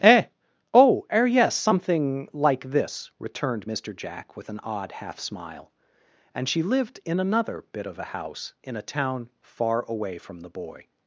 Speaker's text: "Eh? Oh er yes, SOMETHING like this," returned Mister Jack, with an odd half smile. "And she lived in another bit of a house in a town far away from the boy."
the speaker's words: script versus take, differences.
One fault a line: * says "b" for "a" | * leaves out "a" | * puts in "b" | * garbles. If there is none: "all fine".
all fine